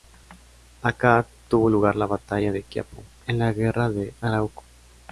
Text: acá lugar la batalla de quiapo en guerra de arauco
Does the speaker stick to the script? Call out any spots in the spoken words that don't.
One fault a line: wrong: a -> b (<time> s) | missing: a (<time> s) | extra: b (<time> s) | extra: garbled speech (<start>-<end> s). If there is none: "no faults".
extra: tuvo (1.5 s)
extra: la (3.4 s)